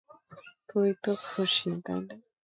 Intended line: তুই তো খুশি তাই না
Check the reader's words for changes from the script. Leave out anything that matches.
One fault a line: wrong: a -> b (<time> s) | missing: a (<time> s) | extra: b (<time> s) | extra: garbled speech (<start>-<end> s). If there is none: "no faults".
no faults